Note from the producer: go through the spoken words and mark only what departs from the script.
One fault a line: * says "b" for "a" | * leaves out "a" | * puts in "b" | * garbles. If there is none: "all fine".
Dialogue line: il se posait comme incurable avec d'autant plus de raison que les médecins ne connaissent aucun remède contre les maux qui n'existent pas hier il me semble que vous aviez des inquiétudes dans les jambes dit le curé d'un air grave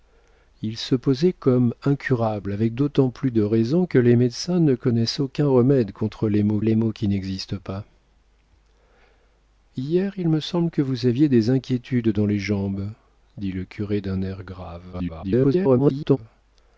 * puts in "les maux"
* garbles